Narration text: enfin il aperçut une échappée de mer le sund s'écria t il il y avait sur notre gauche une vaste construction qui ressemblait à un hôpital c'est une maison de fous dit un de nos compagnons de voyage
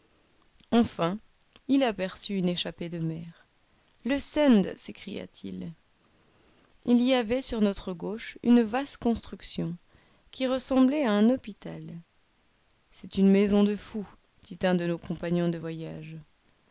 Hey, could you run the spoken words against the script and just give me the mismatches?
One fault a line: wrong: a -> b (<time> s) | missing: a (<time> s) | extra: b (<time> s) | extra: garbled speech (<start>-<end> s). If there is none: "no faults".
no faults